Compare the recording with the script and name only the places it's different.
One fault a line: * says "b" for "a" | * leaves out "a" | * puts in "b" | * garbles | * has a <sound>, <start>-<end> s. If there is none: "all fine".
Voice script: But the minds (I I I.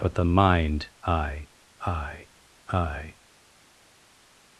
* says "mind" for "minds"